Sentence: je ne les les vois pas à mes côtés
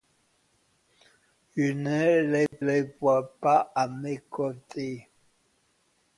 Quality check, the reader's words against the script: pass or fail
pass